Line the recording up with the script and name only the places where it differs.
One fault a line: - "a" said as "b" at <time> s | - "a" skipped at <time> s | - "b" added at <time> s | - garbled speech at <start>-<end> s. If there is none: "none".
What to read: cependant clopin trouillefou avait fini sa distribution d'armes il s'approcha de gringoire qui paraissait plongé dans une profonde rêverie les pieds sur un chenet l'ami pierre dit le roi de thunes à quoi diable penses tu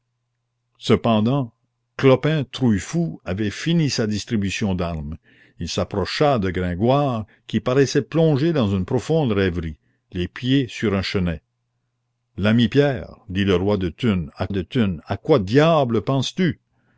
- "de thunes à" added at 14.5 s